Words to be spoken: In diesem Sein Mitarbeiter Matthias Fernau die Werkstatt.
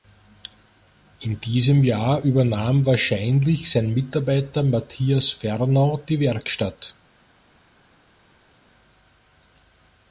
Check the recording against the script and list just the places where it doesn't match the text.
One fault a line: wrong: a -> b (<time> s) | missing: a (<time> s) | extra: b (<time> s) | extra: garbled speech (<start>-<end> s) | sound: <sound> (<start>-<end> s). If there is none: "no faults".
extra: Jahr übernahm wahrscheinlich (1.8 s)